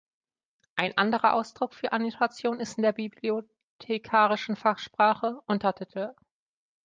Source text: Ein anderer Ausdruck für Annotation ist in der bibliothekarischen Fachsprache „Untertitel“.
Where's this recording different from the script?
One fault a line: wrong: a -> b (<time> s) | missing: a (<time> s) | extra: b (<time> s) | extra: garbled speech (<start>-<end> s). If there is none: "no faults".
no faults